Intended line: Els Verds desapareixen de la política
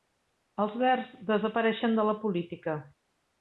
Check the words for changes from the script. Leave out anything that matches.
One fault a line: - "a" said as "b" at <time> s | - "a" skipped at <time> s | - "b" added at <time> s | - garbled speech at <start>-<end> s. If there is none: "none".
none